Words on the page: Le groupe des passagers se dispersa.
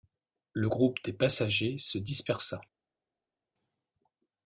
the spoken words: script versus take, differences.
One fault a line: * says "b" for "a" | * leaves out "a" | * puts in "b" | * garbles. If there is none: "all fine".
all fine